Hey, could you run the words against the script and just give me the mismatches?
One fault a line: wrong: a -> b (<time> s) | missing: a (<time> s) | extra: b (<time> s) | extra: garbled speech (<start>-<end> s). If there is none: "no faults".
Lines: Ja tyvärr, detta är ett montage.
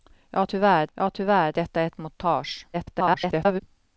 extra: ja tyvärr (0.9 s)
extra: garbled speech (2.7-3.6 s)